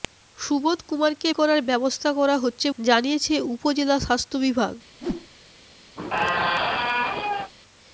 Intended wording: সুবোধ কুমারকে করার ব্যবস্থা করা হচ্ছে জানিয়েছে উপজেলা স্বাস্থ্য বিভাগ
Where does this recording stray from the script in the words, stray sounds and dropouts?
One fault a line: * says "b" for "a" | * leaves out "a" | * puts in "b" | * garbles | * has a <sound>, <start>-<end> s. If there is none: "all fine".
* has a whoosh, 5.0-5.3 s
* has a squeak, 6.0-7.5 s